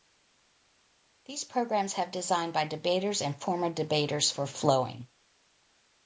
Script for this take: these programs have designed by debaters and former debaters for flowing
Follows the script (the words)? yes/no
yes